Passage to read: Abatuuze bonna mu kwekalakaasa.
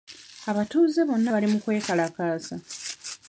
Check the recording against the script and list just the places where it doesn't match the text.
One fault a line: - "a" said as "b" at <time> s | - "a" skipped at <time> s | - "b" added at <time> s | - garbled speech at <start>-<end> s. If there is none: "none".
- "bali" added at 1.3 s